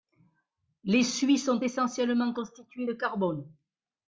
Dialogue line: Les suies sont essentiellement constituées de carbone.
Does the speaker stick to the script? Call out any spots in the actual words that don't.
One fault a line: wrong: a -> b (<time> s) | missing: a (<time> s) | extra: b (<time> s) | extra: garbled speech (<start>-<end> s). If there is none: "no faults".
no faults